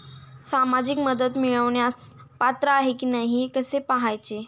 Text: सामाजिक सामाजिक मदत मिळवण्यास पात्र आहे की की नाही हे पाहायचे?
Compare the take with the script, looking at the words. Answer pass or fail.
fail